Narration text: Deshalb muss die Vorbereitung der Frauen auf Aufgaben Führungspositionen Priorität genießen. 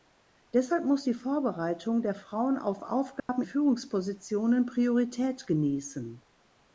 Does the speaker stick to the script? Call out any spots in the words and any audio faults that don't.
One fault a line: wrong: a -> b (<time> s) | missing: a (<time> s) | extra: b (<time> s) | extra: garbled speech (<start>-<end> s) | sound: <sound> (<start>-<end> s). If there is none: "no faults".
sound: dropout (3.2-3.3 s)